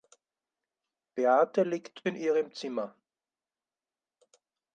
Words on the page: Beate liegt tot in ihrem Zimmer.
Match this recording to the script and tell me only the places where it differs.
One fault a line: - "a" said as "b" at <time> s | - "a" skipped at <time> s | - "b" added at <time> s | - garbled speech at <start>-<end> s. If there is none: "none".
- "tot" skipped at 2.0 s